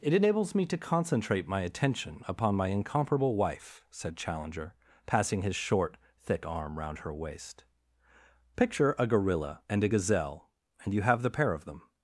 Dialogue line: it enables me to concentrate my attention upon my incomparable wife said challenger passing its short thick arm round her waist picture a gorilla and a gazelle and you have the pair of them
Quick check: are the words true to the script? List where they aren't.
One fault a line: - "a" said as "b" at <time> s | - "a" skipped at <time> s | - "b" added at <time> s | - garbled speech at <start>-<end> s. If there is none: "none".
- "its" said as "his" at 5.4 s